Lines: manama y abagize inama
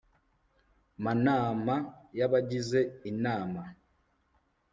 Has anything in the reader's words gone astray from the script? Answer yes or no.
no